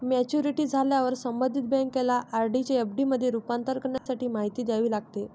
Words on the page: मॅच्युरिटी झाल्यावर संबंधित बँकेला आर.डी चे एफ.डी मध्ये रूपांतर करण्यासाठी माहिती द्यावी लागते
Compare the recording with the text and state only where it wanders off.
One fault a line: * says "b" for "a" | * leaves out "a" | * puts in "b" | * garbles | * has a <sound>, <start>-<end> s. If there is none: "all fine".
* has a dropout, 4.0-4.1 s